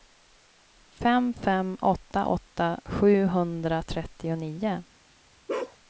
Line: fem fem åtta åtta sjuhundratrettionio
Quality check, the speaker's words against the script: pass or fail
pass